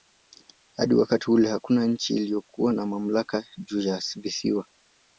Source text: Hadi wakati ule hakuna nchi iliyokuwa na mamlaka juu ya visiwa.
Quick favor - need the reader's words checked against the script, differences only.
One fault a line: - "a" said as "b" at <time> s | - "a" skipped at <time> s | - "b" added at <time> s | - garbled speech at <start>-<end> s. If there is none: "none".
none